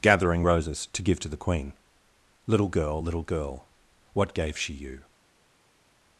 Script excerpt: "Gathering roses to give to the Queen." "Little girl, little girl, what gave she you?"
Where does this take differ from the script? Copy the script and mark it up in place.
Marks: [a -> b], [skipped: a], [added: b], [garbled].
"Gathering roses to give to the Queen." "Little girl, little girl, what gave she you?"